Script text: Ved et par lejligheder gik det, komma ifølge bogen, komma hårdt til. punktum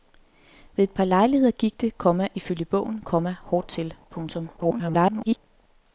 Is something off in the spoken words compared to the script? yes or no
yes